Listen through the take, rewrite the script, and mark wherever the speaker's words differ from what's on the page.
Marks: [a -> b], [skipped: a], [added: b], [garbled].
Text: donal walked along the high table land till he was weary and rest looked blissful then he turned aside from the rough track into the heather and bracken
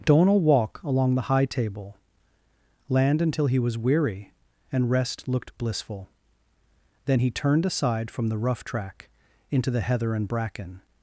donal [walked -> walk] along the high table land [till -> until] he was weary and rest looked blissful then he turned aside from the rough track into the heather and bracken